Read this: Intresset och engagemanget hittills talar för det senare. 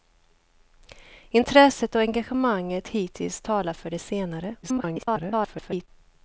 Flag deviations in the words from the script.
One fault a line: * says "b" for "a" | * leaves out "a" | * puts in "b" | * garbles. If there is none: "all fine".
* garbles